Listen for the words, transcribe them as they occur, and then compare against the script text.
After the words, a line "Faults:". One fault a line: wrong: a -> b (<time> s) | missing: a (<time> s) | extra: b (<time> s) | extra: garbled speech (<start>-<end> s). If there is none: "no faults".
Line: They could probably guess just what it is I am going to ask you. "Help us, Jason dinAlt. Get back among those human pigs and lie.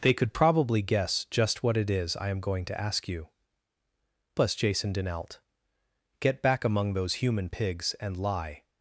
They could probably guess just what it is I am going to ask you. "Us, Jason dinAlt. Get back among those human pigs and lie.
Faults:
missing: Help (3.3 s)